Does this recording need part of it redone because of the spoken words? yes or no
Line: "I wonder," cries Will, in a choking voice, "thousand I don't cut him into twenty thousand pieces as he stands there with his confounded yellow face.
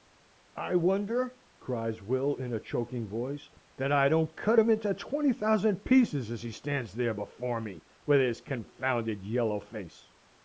yes